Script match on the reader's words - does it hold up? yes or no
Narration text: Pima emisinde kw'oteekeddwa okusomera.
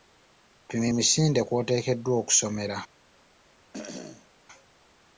yes